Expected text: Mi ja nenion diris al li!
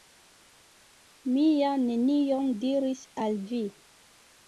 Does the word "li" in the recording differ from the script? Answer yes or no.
yes